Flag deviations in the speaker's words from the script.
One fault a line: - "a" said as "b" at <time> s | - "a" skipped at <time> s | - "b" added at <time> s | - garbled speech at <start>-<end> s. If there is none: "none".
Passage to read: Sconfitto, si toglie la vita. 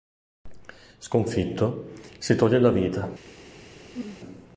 none